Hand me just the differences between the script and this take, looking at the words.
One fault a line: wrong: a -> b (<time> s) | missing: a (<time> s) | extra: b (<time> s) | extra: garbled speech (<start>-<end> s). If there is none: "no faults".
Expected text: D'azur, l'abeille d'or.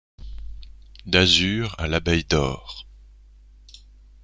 extra: à (1.8 s)